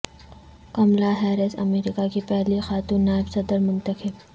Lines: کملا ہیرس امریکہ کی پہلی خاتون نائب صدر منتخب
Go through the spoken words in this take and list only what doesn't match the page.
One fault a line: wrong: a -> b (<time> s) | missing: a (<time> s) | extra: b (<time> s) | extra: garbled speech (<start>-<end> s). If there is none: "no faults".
no faults